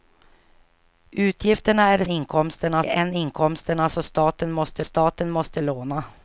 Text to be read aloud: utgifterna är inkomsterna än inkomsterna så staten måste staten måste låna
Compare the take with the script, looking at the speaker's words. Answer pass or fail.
pass